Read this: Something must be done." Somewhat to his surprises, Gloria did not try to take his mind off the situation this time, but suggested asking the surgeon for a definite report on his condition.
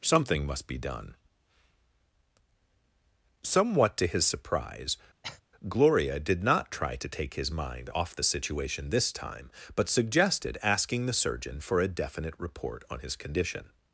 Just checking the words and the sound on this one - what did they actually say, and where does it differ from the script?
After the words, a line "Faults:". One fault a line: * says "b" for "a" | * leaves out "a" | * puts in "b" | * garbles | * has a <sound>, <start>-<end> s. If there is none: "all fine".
Something must be done." Somewhat to his surprise, Gloria did not try to take his mind off the situation this time, but suggested asking the surgeon for a definite report on his condition.
Faults:
* says "surprise" for "surprises"
* has a cough, 5.2-5.4 s